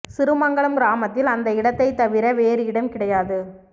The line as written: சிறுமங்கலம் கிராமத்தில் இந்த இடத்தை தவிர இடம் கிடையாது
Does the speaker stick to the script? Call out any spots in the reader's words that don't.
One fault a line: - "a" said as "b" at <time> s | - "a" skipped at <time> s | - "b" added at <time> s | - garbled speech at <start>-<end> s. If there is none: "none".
- "இந்த" said as "அந்த" at 1.3 s
- "வேறு" added at 2.3 s